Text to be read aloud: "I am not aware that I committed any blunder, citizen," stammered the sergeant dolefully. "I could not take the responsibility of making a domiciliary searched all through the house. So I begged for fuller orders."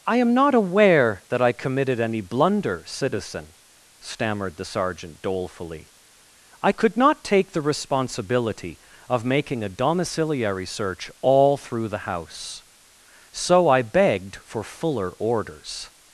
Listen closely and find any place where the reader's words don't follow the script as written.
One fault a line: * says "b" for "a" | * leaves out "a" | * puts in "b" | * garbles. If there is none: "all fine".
* says "search" for "searched"